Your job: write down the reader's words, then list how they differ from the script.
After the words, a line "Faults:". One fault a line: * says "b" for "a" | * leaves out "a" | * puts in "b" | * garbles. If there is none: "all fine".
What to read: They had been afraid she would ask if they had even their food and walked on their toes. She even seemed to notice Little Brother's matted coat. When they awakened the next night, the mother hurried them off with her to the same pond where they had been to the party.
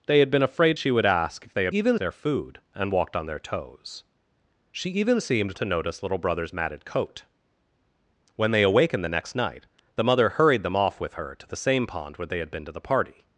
They had been afraid she would ask if they had even their food and walked on their toes. She even seemed to notice Little Brother's matted coat. When they awakened the next night, the mother hurried them off with her to the same pond where they had been to the party.
Faults:
all fine